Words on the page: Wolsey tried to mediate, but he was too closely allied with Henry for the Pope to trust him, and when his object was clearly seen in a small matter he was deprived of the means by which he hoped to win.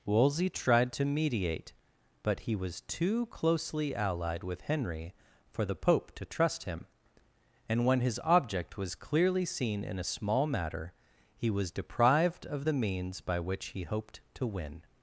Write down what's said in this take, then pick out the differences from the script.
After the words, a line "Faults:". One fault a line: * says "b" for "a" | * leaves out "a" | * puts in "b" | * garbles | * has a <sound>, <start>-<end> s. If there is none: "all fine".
Wolsey tried to mediate, but he was too closely allied with Henry for the Pope to trust him, and when his object was clearly seen in a small matter he was deprived of the means by which he hoped to win.
Faults:
all fine